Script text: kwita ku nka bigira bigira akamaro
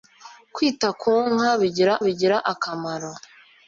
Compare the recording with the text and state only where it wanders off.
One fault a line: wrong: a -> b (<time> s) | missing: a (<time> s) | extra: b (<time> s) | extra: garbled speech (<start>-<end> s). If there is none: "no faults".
no faults